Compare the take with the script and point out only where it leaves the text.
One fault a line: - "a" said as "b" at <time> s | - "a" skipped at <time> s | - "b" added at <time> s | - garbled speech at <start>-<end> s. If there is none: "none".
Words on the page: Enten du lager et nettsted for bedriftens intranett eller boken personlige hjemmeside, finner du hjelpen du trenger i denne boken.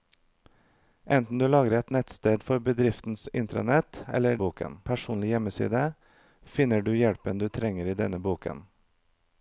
none